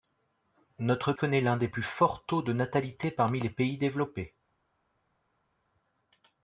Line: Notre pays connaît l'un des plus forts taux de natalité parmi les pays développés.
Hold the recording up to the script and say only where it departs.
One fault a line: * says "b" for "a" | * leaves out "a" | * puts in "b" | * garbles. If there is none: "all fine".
* leaves out "pays"